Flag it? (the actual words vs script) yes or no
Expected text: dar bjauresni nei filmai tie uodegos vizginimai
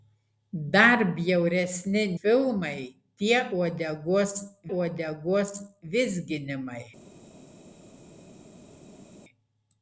yes